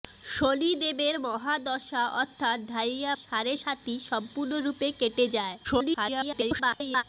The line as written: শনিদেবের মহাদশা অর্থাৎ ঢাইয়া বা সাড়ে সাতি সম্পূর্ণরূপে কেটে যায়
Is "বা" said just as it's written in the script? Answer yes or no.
no